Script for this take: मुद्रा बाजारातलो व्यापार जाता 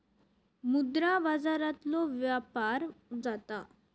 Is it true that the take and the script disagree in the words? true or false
false